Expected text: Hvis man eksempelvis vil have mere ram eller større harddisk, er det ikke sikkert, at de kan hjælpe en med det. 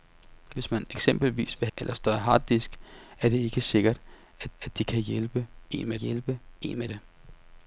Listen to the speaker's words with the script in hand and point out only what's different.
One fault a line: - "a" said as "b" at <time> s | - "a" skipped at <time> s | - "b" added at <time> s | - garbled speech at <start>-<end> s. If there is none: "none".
- "have mere ram" skipped at 1.7 s
- "at" added at 4.6 s
- "hjælpe en med" added at 5.9 s